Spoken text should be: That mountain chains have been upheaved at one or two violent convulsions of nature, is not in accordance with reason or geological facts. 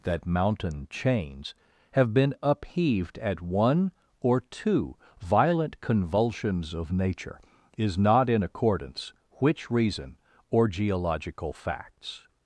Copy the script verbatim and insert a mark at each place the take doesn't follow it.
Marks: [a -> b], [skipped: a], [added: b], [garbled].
That mountain chains have been upheaved at one or two violent convulsions of nature, is not in accordance [with -> which] reason or geological facts.